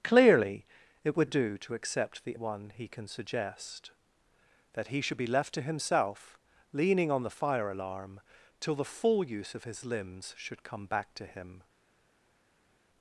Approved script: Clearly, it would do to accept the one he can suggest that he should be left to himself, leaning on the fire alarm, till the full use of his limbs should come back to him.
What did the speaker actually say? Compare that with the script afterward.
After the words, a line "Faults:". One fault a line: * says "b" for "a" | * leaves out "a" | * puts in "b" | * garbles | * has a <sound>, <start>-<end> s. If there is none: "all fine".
Clearly, it would do to accept the one he can suggest that he should be left to himself, leaning on the fire alarm, till the full use of his limbs should come back to him.
Faults:
all fine